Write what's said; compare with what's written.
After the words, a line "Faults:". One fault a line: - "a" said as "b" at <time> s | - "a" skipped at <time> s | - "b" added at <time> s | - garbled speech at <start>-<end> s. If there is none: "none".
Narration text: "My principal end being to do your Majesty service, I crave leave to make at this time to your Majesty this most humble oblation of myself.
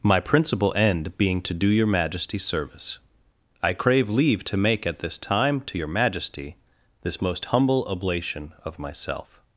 "My principal end being to do your Majesty service, I crave leave to make at this time to your Majesty this most humble oblation of myself.
Faults:
none